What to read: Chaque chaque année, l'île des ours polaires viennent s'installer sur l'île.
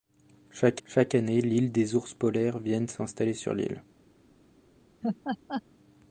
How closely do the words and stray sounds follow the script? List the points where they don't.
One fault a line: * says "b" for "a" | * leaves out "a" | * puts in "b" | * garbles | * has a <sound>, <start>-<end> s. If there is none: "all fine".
* has a laugh, 5.0-5.6 s